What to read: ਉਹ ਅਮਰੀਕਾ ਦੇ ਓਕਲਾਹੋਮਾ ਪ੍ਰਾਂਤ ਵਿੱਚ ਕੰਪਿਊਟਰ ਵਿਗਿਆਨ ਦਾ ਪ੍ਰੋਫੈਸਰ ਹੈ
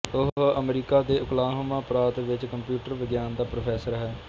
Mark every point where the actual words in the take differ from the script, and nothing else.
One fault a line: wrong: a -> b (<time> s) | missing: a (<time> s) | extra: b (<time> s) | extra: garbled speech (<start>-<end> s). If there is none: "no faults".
no faults